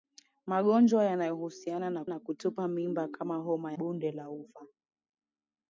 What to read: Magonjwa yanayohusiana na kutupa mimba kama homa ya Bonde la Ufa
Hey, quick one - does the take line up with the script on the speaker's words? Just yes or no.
no